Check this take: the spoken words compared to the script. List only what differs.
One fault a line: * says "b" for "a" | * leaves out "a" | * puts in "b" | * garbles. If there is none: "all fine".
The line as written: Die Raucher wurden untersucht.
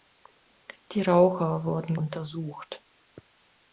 all fine